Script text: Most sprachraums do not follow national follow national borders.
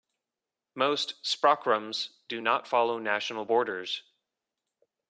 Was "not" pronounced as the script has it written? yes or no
yes